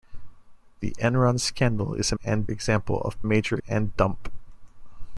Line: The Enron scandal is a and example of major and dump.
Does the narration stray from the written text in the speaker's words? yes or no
no